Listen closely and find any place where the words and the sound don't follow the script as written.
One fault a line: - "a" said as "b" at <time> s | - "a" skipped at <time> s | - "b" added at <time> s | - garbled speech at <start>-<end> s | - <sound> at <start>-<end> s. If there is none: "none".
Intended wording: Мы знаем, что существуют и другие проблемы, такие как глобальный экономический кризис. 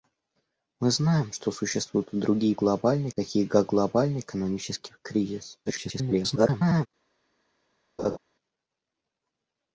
- "проблемы" said as "глобальный" at 2.6 s
- garbled speech at 5.7-6.9 s
- laugh at 8.0-8.2 s